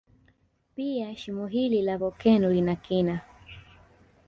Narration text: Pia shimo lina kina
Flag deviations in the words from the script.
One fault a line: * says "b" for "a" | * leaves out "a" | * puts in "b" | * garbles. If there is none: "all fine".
* puts in "hili la volkeno"